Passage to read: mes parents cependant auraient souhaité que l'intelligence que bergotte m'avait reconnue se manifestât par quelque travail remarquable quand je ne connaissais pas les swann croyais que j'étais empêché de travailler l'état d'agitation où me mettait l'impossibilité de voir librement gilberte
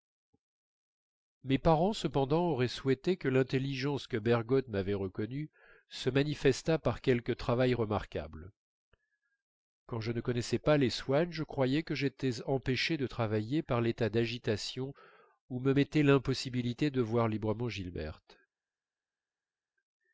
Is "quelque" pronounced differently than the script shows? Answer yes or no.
no